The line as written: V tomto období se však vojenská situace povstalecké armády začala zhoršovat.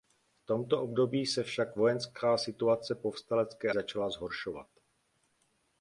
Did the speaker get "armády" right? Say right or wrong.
wrong